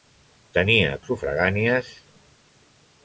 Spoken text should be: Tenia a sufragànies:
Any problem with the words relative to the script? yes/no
no